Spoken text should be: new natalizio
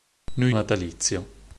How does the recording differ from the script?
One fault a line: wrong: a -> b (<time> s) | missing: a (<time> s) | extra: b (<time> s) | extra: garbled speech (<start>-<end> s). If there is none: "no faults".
no faults